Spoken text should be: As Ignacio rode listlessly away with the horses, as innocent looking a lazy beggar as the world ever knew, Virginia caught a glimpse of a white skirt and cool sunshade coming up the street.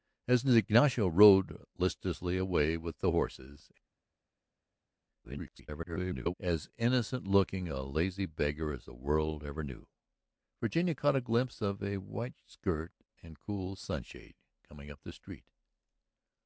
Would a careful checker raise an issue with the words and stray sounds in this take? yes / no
yes